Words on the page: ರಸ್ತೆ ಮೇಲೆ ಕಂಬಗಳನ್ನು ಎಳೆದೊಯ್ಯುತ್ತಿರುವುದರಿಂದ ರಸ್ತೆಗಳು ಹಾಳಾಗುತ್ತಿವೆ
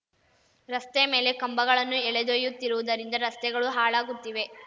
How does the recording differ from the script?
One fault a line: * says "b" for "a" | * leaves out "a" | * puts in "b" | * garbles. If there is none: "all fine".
all fine